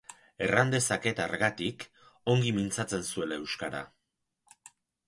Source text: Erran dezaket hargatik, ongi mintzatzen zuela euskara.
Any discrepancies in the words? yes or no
no